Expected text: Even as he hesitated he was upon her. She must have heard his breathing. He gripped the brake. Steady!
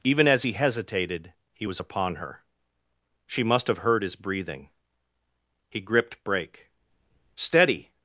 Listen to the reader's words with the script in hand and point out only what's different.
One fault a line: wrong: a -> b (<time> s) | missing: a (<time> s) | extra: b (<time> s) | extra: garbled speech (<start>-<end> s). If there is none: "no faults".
missing: the (6.2 s)